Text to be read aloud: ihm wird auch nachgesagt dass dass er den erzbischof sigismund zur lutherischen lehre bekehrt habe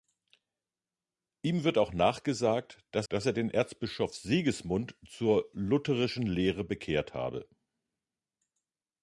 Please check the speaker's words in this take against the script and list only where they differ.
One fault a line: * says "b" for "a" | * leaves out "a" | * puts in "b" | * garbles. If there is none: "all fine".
all fine